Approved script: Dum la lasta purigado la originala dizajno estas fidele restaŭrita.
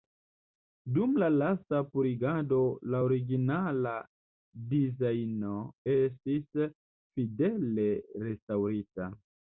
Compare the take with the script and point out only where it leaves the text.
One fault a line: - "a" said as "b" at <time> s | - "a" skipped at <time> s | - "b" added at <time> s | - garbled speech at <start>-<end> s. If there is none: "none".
- "estas" said as "estis" at 5.9 s